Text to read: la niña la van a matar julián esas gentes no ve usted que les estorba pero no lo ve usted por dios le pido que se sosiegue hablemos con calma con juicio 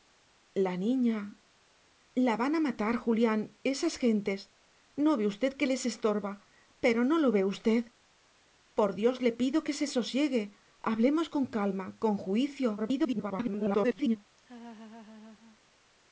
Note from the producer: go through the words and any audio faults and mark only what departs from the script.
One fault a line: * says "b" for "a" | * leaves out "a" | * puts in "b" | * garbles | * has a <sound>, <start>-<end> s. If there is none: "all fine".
* garbles
* has a laugh, 14.4-15.6 s